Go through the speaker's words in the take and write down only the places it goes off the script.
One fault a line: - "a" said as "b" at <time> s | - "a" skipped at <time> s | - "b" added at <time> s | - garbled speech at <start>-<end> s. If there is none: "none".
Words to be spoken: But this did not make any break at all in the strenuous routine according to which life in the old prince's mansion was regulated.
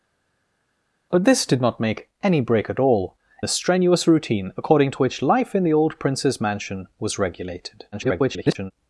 - "in" skipped at 3.1 s
- garbled speech at 7.9-8.7 s